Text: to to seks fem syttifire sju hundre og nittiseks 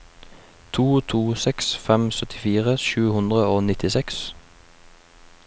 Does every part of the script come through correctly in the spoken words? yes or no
yes